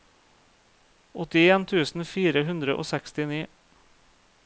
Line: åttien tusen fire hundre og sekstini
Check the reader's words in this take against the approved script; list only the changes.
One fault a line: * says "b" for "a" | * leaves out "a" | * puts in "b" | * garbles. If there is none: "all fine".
all fine